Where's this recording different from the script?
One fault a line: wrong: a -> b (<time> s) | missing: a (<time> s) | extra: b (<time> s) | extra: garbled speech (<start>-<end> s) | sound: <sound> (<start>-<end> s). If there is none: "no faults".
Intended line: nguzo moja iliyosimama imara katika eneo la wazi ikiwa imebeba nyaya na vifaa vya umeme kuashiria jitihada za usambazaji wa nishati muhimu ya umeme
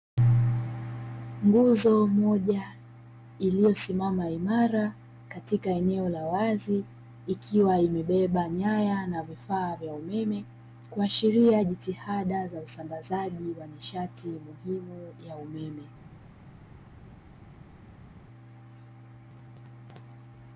no faults